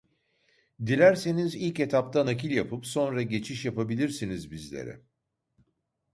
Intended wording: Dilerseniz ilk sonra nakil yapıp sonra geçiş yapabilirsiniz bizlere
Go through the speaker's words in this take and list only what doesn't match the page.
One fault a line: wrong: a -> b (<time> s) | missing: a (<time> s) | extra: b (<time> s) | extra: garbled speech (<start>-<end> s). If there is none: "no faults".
wrong: sonra -> etapta (1.8 s)